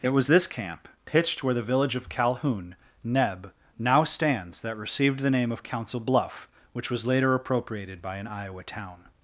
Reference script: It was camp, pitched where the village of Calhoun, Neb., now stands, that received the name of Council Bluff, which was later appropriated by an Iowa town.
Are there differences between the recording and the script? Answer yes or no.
yes